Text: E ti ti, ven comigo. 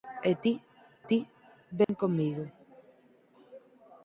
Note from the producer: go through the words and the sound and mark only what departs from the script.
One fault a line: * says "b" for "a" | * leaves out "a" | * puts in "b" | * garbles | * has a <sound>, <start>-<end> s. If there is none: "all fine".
* has a dropout, 1.8-1.9 s